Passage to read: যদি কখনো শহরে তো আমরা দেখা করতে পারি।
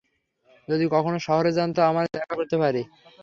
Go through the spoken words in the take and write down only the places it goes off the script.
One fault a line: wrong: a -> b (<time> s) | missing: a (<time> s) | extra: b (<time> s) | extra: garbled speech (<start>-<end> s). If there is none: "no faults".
extra: যান (1.5 s)